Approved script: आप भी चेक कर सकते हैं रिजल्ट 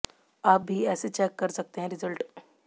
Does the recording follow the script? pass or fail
fail